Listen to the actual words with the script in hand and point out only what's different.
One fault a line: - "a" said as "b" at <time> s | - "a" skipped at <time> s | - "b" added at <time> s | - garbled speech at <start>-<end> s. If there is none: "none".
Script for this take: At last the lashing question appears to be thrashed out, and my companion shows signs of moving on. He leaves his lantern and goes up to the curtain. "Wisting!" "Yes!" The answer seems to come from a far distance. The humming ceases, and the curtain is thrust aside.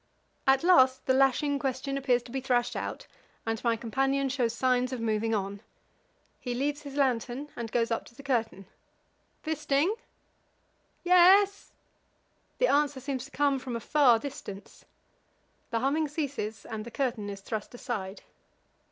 none